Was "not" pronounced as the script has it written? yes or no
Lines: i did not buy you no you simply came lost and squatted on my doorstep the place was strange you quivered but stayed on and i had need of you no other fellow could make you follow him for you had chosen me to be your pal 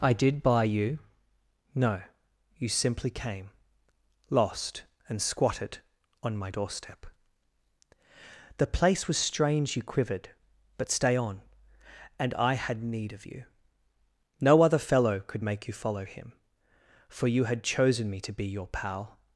no